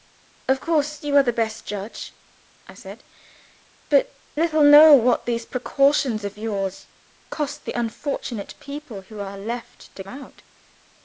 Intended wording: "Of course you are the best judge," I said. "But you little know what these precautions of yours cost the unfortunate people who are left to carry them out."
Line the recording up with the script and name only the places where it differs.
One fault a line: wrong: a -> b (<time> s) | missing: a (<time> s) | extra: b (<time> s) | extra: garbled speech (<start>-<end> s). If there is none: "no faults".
missing: you (4.2 s)
missing: carry them (10.0 s)